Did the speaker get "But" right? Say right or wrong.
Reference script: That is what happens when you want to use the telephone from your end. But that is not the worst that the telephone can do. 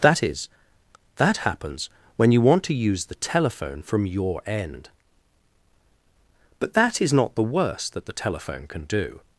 right